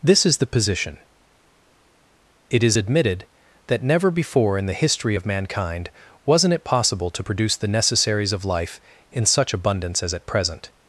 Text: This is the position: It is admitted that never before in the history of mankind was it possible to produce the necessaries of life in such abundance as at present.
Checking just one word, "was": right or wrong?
wrong